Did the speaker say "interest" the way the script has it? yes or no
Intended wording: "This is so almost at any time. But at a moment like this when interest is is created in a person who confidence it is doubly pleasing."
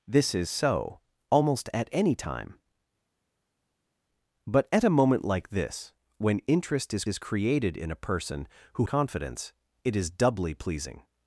yes